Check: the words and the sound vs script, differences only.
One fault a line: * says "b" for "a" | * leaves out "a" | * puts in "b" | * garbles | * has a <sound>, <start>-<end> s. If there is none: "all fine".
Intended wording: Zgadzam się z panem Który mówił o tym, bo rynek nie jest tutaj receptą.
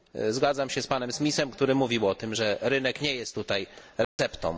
* puts in "Smithem"
* says "że" for "bo"
* has a dropout, 4.0-4.2 s